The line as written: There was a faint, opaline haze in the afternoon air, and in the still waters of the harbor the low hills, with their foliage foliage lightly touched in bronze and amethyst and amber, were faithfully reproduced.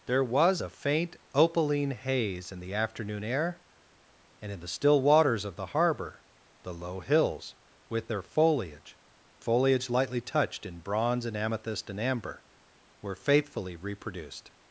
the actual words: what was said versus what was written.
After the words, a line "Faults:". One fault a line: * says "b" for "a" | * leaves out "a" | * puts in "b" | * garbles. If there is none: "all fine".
There was a faint, opaline haze in the afternoon air, and in the still waters of the harbor the low hills, with their foliage foliage lightly touched in bronze and amethyst and amber, were faithfully reproduced.
Faults:
all fine